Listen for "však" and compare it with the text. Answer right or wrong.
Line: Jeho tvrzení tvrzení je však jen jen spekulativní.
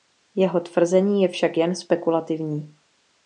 right